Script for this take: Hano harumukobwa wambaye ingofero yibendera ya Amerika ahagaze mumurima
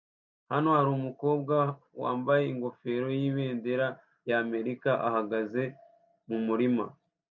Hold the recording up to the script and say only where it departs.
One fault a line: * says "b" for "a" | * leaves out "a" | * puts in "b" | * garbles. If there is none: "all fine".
all fine